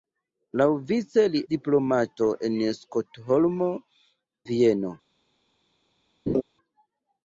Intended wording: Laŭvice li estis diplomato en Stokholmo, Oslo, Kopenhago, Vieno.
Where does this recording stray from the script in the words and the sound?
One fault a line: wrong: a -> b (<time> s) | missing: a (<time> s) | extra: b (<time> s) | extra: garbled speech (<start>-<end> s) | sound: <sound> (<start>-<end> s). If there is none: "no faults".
missing: estis (1.4 s)
missing: Oslo Kopenhago (3.7 s)
sound: laugh (6.3-6.4 s)